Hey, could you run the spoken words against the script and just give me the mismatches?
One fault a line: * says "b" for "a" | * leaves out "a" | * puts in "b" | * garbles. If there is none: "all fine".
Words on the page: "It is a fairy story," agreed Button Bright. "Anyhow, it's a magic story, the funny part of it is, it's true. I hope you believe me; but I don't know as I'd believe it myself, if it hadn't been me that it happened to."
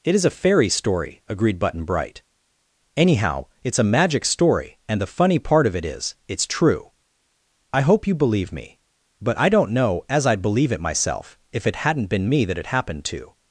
* puts in "and"